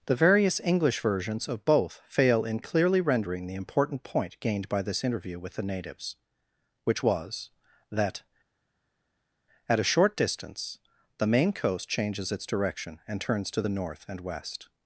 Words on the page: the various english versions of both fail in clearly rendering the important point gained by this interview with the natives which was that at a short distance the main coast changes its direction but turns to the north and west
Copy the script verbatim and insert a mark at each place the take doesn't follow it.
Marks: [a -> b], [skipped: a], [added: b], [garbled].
the various english versions of both fail in clearly rendering the important point gained by this interview with the natives which was that at a short distance the main coast changes its direction [but -> and] turns to the north and west